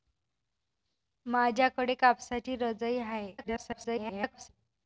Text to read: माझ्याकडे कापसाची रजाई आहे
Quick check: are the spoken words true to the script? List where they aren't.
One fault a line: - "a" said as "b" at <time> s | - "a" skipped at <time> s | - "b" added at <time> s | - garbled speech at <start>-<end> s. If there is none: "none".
- garbled speech at 3.4-4.5 s